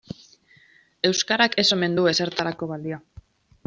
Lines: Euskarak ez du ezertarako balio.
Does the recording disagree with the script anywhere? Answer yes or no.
yes